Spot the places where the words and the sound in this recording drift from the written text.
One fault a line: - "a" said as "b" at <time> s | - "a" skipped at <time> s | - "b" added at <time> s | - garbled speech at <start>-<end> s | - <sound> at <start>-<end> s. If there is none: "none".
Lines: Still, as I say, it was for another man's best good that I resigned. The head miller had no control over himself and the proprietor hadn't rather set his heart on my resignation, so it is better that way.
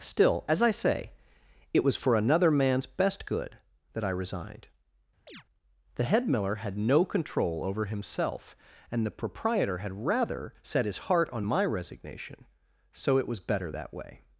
- chirp at 5.3-5.4 s
- "hadn't" said as "had" at 9.8 s
- "is" said as "was" at 13.3 s